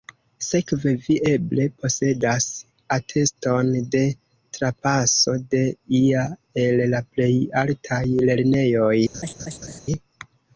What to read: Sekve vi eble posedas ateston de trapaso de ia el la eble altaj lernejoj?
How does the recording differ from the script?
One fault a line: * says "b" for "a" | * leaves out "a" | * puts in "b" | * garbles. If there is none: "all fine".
* says "plej" for "eble"